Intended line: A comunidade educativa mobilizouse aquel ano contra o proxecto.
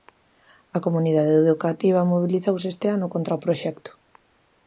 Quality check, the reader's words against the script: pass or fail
fail